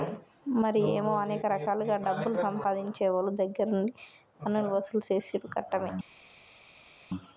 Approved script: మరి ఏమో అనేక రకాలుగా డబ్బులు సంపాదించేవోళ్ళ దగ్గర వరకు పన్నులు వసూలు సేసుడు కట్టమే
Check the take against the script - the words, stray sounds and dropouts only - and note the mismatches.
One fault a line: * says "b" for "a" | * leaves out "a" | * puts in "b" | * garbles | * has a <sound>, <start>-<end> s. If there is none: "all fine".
* says "నుండి" for "వరకు"